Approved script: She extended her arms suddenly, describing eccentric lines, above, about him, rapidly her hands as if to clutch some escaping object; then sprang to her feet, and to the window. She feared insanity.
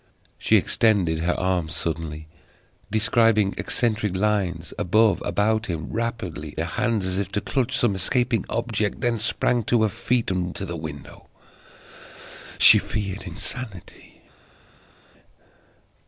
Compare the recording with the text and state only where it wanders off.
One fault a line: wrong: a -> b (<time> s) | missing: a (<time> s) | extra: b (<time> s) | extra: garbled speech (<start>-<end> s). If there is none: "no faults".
no faults